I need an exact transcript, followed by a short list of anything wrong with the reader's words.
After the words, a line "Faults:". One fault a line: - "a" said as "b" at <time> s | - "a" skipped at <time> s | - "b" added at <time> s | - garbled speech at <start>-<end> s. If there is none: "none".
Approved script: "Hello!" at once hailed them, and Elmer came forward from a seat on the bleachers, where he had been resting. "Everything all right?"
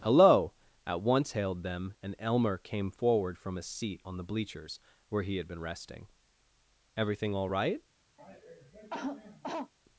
"Hello!" at once hailed them, and Elmer came forward from a seat on the bleachers, where he had been resting. "Everything all right?"
Faults:
none